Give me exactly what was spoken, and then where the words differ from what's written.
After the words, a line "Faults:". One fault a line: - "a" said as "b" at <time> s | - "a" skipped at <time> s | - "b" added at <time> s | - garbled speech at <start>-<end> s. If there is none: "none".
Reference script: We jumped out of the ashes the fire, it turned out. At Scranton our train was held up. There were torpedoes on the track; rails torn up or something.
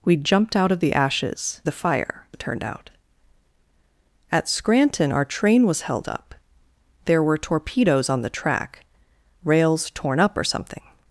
We jumped out of the ashes the fire, it turned out. At Scranton our train was held up. There were torpedoes on the track; rails torn up or something.
Faults:
none